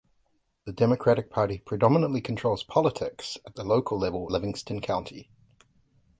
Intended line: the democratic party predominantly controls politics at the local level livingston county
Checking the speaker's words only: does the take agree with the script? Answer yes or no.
yes